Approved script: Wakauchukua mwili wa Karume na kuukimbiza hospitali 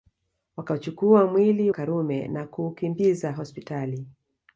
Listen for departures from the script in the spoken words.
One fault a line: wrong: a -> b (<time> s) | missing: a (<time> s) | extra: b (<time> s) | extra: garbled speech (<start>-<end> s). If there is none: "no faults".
missing: wa (1.7 s)